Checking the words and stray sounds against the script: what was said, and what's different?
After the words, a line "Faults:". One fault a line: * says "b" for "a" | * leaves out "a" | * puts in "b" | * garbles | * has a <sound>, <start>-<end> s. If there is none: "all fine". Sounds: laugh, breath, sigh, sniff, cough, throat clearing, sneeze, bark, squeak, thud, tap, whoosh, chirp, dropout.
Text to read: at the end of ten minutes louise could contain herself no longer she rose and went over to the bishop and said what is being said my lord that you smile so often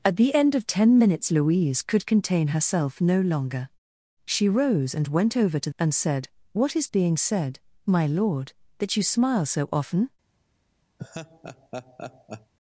at the end of ten minutes louise could contain herself no longer she rose and went over to and said what is being said my lord that you smile so often
Faults:
* leaves out "the bishop"
* has a laugh, 11.0-12.5 s